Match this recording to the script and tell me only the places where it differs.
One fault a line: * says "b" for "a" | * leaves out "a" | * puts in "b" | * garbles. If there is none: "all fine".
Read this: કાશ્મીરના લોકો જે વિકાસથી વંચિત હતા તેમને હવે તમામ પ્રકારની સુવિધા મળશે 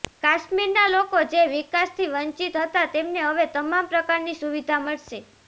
all fine